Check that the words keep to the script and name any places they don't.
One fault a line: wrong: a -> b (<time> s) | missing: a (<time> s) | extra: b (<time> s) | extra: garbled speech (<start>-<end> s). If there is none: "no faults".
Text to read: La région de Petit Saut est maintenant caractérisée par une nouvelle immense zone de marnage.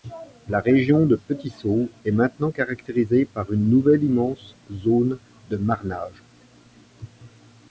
no faults